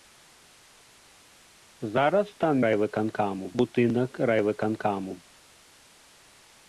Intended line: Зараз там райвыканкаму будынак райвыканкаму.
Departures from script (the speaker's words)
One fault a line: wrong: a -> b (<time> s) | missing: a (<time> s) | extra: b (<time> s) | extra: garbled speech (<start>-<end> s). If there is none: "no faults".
no faults